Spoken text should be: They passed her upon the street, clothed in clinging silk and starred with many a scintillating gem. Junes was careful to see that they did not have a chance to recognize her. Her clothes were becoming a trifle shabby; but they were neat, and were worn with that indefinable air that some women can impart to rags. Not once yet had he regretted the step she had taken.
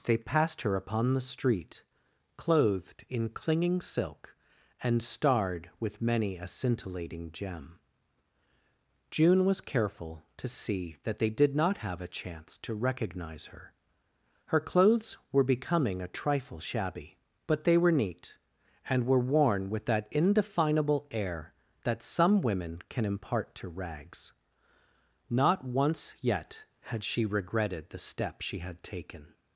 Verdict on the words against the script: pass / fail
fail